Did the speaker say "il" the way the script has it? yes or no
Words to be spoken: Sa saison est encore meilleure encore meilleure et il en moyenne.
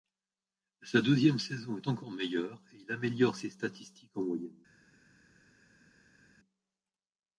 no